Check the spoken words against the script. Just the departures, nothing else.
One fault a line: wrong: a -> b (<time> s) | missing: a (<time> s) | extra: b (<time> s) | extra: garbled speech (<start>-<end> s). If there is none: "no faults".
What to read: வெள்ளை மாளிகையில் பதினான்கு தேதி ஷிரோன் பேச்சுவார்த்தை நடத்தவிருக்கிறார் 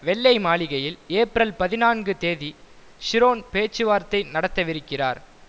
extra: ஏப்ரல் (1.1 s)